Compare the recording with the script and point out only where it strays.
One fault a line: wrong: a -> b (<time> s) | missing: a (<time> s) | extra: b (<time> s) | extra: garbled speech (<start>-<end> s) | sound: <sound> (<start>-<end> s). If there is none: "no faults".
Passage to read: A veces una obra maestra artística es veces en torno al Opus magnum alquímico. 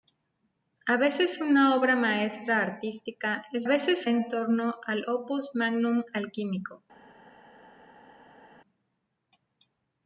no faults